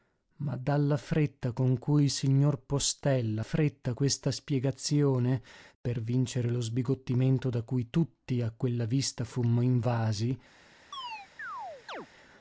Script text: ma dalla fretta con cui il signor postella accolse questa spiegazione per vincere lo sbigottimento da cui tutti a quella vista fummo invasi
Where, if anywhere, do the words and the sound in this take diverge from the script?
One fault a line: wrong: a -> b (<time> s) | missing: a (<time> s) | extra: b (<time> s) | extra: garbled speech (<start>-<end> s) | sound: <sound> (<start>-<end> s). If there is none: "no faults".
wrong: accolse -> fretta (3.4 s)
sound: chirp (10.9-12.1 s)